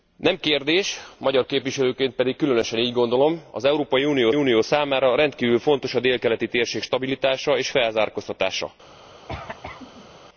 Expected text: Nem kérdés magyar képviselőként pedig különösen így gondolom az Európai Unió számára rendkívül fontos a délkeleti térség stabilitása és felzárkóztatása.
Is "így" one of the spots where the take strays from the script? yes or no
no